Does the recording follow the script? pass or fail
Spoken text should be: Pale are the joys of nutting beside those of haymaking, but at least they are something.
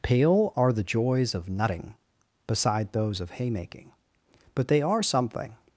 fail